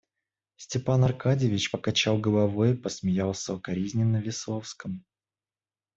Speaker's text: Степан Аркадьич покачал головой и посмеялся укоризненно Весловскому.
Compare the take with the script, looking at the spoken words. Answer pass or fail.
pass